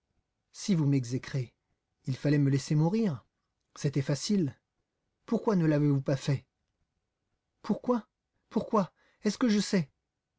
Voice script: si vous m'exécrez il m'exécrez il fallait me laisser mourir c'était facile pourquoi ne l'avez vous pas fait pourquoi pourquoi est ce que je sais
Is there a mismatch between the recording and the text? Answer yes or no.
yes